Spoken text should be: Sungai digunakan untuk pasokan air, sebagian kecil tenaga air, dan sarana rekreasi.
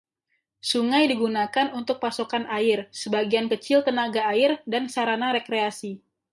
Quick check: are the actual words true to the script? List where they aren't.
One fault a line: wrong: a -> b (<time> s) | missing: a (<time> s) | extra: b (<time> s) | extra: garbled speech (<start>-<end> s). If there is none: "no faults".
no faults